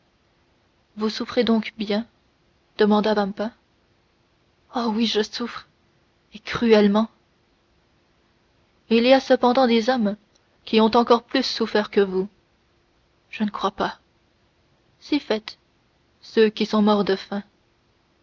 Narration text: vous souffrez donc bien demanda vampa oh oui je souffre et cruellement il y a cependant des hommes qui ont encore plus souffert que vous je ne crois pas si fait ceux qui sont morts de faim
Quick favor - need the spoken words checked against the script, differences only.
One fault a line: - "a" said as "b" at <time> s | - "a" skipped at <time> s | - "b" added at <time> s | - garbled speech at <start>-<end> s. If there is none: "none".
none